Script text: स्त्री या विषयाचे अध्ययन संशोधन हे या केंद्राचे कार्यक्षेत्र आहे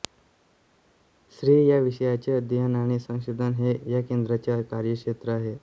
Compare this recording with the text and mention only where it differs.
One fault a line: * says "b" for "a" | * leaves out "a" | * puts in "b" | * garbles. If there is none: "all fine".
* puts in "आणि"